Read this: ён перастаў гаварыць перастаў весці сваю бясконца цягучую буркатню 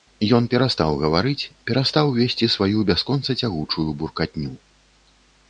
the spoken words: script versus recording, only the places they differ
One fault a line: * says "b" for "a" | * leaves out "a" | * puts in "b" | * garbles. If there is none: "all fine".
all fine